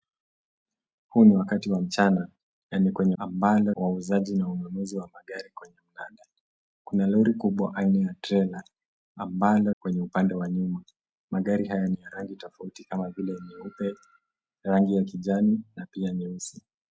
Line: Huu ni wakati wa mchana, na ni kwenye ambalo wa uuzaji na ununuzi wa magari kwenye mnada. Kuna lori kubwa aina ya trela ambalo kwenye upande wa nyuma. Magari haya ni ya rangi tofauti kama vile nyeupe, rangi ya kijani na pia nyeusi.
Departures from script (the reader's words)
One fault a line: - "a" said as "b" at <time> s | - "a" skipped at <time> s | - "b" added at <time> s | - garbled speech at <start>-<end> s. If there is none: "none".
none